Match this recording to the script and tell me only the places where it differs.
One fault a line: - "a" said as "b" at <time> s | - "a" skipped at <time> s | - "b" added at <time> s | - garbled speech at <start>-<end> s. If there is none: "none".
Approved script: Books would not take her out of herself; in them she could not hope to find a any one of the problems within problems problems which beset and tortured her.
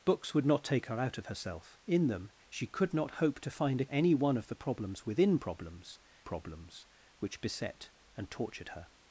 none